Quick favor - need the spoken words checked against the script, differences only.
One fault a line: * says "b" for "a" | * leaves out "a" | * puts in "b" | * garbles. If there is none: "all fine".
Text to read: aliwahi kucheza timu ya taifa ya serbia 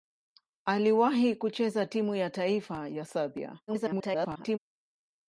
* garbles